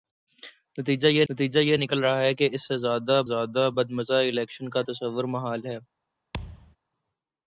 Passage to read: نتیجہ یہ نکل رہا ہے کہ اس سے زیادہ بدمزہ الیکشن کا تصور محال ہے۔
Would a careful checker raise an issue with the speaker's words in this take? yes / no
yes